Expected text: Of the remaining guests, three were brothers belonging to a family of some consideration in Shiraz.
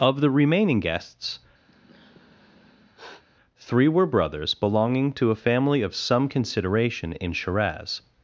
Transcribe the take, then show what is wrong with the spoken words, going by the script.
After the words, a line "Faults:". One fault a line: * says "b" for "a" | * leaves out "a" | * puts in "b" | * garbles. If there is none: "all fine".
Of the remaining guests, three were brothers belonging to a family of some consideration in Shiraz.
Faults:
all fine